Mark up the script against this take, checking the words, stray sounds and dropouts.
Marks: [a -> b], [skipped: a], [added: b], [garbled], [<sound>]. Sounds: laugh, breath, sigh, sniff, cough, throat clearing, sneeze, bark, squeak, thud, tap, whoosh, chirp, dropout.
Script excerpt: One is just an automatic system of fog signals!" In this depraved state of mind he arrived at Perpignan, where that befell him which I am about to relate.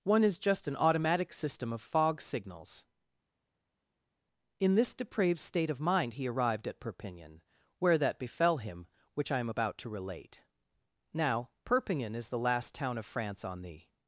One is just an automatic system of fog signals!" In this depraved state of mind he arrived at Perpignan, where that befell him which I am about to relate. [added: Now Perpignan is the last town of France on the]